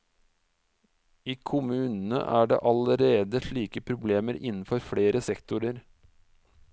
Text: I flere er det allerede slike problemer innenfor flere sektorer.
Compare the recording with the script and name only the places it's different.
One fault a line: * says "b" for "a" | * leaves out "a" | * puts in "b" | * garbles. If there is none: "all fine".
* says "kommunene" for "flere"